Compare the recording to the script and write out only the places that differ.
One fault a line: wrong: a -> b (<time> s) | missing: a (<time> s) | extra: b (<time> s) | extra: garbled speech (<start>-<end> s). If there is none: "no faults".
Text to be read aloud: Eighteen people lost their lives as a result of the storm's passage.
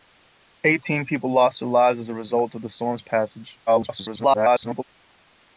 extra: garbled speech (3.7-4.8 s)